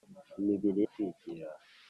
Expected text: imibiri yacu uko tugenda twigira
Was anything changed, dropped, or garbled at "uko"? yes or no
yes